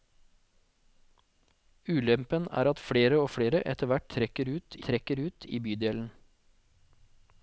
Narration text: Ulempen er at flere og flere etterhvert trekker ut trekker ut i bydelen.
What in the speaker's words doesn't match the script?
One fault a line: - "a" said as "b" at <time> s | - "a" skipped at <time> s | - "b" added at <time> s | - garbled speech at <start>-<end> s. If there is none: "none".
none